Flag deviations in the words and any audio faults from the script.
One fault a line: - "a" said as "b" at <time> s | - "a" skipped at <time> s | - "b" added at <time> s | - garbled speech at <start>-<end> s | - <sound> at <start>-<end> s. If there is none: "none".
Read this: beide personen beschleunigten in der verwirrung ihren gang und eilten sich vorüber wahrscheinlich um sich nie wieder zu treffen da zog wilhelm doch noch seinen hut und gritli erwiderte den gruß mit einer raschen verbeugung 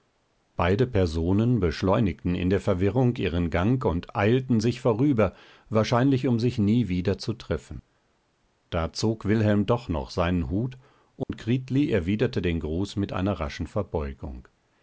- dropout at 11.2-11.3 s